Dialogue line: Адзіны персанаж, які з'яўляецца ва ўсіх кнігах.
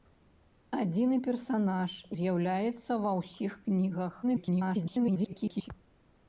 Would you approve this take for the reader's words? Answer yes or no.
no